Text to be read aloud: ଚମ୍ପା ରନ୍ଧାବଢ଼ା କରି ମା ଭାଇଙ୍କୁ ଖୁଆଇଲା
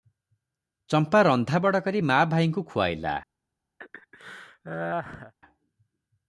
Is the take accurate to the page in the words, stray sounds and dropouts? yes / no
no